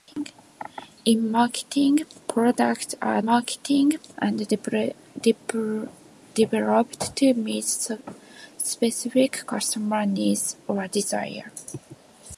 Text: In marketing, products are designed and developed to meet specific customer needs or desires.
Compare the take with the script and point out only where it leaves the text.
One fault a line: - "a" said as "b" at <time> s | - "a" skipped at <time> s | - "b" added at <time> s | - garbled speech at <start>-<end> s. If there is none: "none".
- "designed" said as "marketing" at 3.2 s